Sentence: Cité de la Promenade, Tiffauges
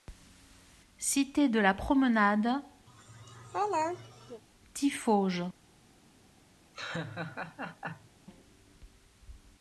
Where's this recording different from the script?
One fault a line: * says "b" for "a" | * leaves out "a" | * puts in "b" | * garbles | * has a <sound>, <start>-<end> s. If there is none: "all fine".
* has a laugh, 2.9-4.4 s
* has a laugh, 6.7-8.1 s